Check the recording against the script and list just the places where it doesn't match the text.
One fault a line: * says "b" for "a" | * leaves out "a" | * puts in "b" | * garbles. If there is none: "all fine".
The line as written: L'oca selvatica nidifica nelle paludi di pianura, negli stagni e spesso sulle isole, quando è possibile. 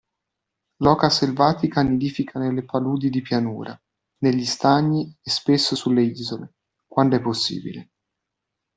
all fine